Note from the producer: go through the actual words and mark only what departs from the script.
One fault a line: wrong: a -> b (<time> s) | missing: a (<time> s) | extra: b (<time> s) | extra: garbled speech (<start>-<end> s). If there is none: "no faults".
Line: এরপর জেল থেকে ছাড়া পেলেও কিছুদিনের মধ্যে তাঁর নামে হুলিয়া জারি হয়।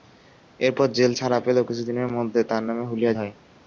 missing: থেকে (1.1 s)
missing: জারি (3.1 s)